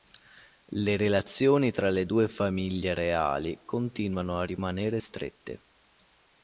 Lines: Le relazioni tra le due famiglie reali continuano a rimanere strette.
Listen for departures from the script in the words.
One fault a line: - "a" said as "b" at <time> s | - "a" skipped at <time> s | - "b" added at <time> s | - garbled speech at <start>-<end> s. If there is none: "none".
none